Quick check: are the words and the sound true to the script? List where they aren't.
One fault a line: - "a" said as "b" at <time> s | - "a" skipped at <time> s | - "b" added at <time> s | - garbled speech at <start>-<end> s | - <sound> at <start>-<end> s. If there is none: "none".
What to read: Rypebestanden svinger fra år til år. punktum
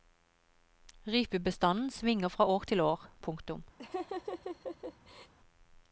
- laugh at 3.8-5.3 s